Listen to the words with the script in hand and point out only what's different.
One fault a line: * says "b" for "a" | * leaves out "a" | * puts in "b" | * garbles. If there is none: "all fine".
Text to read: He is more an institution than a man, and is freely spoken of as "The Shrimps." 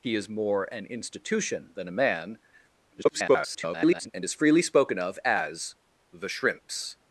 * garbles